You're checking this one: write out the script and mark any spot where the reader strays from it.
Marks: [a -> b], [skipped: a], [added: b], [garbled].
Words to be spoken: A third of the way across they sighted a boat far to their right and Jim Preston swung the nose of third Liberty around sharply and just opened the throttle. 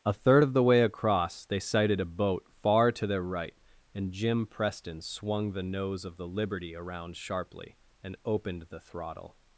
A third of the way across they sighted a boat far to their right and Jim Preston swung the nose of [third -> the] Liberty around sharply and [skipped: just] opened the throttle.